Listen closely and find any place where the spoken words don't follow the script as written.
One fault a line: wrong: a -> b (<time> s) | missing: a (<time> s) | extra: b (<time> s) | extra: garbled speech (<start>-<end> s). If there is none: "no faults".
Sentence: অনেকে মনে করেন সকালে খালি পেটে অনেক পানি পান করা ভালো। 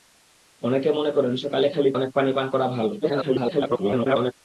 missing: পেটে (1.9 s)
extra: garbled speech (3.0-4.3 s)